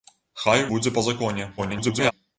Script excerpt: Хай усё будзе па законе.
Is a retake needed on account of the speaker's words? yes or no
yes